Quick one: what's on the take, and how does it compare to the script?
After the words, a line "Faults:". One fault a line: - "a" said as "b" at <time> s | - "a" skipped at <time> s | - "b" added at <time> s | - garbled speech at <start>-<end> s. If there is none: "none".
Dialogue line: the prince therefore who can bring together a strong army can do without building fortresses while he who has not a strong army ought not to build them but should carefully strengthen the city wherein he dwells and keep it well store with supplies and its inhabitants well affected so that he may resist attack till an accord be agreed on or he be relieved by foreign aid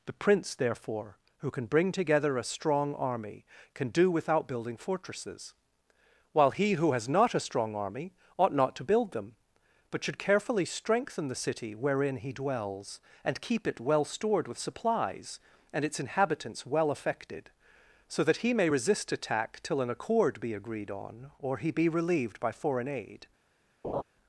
the prince therefore who can bring together a strong army can do without building fortresses while he who has not a strong army ought not to build them but should carefully strengthen the city wherein he dwells and keep it well stored with supplies and its inhabitants well affected so that he may resist attack till an accord be agreed on or he be relieved by foreign aid
Faults:
- "store" said as "stored" at 14.1 s